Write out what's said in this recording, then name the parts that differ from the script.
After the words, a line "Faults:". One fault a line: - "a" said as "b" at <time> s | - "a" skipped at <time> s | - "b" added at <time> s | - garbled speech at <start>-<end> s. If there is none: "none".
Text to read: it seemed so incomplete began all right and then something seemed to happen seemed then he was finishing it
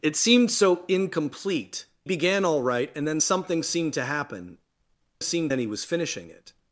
it seemed so incomplete began all right and then something seemed to happen seemed then he was finishing it
Faults:
none